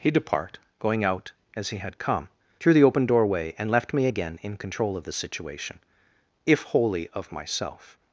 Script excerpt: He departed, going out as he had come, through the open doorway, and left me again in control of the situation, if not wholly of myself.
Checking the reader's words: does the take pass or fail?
fail